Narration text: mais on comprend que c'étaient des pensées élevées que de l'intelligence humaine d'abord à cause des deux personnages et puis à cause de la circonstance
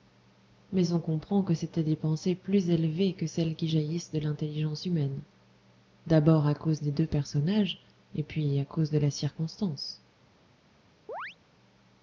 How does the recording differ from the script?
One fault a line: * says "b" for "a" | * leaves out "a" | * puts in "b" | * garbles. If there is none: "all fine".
* puts in "plus"
* puts in "celles qui jaillissent"